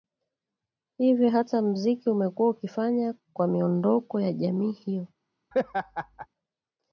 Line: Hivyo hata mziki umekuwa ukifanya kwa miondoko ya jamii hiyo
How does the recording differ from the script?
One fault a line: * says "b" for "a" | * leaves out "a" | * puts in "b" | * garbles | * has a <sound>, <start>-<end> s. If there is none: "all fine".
* has a laugh, 5.5-6.3 s